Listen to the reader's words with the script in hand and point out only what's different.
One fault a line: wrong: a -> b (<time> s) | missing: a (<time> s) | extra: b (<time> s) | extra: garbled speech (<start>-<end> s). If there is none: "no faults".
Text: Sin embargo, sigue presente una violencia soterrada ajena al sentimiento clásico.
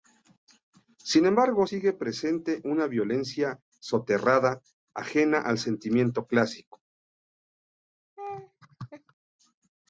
no faults